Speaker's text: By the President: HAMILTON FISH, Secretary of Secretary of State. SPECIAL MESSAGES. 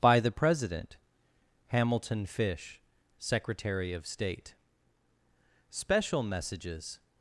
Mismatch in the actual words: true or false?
true